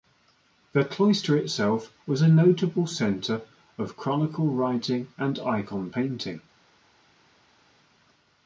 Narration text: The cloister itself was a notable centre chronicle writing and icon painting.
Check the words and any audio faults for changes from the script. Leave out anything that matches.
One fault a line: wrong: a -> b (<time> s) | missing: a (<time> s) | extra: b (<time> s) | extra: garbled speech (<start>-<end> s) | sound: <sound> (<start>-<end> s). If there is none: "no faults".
extra: of (3.8 s)